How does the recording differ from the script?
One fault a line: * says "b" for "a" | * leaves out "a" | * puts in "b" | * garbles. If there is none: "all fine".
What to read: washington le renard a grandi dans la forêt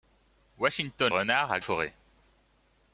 * leaves out "le"
* leaves out "grandi dans la"